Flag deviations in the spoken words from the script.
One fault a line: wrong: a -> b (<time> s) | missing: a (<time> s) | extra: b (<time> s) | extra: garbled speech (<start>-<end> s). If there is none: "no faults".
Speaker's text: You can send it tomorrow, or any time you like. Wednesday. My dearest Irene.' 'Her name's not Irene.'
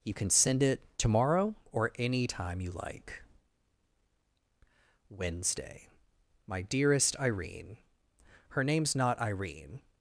no faults